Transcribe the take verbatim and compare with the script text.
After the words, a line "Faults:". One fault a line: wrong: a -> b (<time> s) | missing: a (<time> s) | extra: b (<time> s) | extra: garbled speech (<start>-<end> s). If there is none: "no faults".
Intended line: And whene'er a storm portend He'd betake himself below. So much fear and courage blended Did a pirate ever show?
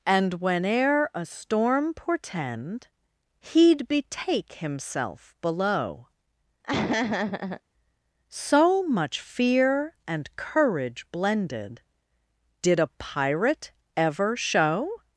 And whene'er a storm portend He'd betake himself below. So much fear and courage blended Did a pirate ever show?
Faults:
no faults